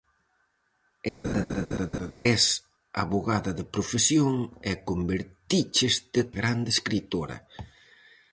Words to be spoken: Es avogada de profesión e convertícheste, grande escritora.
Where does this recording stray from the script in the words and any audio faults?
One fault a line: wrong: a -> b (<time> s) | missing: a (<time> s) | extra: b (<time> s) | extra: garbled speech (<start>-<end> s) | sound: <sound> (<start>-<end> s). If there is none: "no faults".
sound: laugh (1.2-2.1 s)